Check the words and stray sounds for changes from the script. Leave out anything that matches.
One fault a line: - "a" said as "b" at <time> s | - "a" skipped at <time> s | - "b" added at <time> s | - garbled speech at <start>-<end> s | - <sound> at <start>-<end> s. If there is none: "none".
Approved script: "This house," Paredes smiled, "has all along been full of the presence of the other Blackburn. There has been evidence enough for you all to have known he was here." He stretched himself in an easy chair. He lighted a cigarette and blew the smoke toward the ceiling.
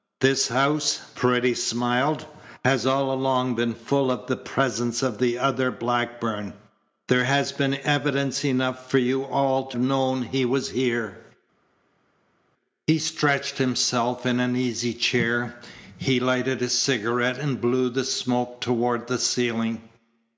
- "have" skipped at 9.8 s